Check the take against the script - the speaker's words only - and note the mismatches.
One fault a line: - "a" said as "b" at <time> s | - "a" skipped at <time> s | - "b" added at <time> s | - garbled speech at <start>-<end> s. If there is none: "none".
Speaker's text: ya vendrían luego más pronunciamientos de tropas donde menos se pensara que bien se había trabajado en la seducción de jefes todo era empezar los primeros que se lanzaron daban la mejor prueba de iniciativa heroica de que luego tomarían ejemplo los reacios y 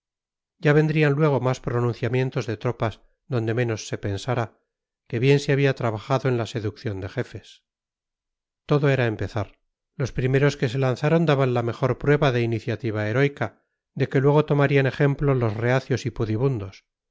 none